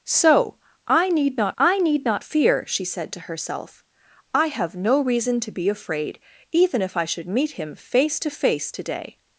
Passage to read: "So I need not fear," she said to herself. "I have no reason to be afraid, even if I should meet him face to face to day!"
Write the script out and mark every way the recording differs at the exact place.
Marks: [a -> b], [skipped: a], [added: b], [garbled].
"So I need not [added: I need not] fear," she said to herself. "I have no reason to be afraid, even if I should meet him face to face to day!"